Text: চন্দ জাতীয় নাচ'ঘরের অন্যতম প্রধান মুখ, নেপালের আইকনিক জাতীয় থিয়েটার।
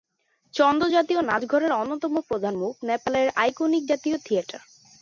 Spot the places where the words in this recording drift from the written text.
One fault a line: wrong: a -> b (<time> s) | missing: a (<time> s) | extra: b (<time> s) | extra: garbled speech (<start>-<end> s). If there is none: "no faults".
no faults